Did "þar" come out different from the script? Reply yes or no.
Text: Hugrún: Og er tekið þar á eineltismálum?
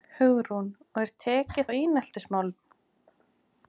yes